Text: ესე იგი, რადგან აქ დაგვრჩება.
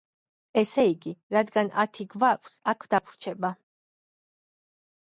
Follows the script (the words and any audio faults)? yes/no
no